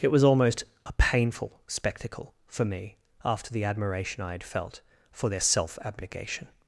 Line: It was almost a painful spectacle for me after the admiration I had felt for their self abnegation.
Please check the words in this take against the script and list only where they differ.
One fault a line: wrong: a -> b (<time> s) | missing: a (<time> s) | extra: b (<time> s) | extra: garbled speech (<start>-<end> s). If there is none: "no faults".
no faults